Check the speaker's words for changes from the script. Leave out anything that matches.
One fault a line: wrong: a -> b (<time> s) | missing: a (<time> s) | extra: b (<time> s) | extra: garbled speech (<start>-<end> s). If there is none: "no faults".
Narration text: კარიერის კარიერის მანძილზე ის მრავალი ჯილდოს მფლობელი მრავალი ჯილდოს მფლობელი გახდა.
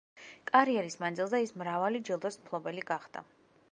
missing: კარიერის (0.9 s)
missing: მრავალი ჯილდოს მფლობელი (2.9 s)